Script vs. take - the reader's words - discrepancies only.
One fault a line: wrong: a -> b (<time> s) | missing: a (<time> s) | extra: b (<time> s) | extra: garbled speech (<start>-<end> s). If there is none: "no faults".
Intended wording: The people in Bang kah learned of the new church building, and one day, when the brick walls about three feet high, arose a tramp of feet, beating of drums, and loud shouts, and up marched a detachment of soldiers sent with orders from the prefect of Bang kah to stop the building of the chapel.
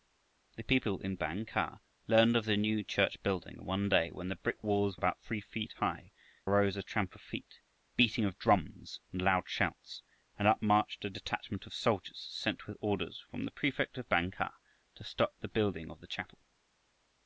no faults